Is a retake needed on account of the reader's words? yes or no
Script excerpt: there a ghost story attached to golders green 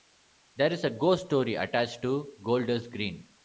yes